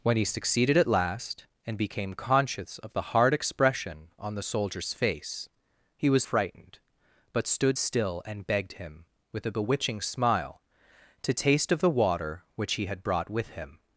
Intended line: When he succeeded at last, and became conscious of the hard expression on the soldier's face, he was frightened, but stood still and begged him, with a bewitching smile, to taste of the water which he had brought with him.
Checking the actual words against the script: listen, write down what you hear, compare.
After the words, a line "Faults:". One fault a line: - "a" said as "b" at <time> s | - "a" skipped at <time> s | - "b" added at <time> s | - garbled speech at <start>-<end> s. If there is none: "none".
When he succeeded at last, and became conscious of the hard expression on the soldier's face, he was frightened, but stood still and begged him, with a bewitching smile, to taste of the water which he had brought with him.
Faults:
none